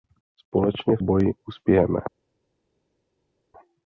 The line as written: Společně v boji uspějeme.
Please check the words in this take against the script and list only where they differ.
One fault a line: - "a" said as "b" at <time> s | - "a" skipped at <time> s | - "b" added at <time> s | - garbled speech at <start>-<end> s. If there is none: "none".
none